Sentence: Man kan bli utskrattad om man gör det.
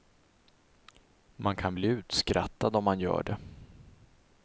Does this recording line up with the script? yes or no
yes